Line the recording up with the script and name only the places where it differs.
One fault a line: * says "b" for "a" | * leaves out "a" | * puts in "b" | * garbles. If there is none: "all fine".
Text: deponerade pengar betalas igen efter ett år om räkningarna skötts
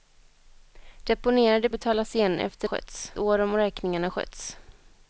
* leaves out "pengar"
* says "skötts" for "ett"